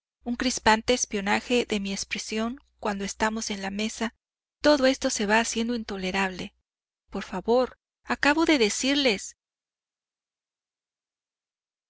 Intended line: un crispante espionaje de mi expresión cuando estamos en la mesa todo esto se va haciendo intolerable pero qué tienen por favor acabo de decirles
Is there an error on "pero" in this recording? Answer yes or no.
yes